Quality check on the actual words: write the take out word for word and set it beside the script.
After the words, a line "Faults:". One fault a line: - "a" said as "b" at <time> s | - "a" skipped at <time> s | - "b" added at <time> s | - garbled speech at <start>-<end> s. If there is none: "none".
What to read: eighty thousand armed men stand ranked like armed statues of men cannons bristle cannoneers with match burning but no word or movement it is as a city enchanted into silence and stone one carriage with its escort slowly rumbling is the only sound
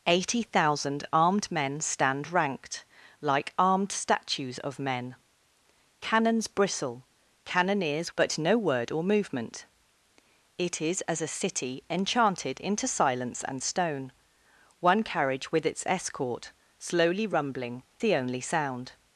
eighty thousand armed men stand ranked like armed statues of men cannons bristle cannoneers but no word or movement it is as a city enchanted into silence and stone one carriage with its escort slowly rumbling the only sound
Faults:
- "with match burning" skipped at 8.1 s
- "is" skipped at 17.8 s